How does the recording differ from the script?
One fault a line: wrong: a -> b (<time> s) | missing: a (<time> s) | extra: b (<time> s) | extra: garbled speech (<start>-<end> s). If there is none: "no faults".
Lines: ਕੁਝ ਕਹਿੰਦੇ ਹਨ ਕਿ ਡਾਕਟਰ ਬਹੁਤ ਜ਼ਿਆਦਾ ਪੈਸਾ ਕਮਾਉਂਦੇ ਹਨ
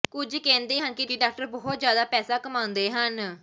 extra: ਕਿ (1.0 s)